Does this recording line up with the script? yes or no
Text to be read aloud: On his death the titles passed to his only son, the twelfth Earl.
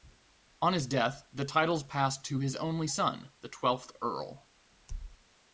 yes